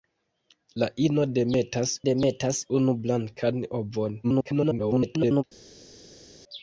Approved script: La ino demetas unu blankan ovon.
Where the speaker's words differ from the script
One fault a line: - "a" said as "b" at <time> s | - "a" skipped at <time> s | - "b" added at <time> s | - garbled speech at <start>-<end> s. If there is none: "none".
- "demetas" added at 2.1 s
- garbled speech at 4.2-5.4 s